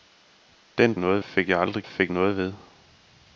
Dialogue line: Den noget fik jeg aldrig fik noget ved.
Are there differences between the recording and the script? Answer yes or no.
no